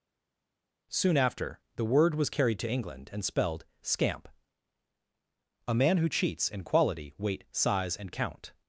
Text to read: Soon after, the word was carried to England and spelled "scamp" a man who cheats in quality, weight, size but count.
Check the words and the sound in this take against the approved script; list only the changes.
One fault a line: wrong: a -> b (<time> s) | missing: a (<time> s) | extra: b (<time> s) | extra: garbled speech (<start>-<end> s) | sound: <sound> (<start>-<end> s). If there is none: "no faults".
wrong: but -> and (8.0 s)